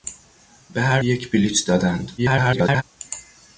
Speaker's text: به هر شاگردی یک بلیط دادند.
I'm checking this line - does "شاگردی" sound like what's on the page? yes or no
no